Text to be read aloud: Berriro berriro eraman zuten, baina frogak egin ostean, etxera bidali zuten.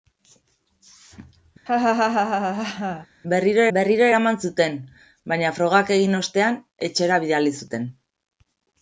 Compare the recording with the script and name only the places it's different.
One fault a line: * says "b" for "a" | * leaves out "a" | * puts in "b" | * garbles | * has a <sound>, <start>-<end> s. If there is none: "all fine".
* has a laugh, 1.7-3.1 s